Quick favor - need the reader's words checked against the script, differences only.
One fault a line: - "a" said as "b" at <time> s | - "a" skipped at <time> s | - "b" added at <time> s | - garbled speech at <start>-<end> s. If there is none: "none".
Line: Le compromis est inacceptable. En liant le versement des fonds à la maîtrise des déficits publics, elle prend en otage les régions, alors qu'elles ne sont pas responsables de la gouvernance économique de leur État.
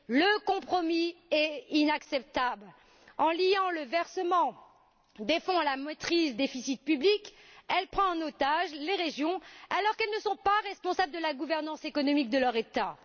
- "des" skipped at 6.4 s